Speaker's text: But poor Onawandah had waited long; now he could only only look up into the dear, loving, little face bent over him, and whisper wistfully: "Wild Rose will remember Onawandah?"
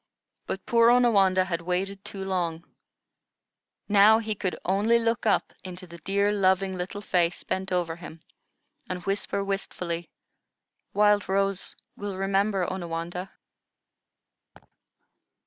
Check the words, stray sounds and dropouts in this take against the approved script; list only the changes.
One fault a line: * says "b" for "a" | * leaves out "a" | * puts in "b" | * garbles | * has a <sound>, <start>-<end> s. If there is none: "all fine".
* puts in "too"
* leaves out "only"
* has a laugh, 14.5-14.7 s